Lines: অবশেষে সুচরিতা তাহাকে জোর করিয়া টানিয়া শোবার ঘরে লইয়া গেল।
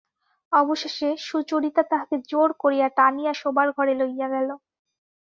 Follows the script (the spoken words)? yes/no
yes